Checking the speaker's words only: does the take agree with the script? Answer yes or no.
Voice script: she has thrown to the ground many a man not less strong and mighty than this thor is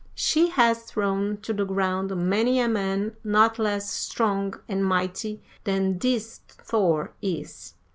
yes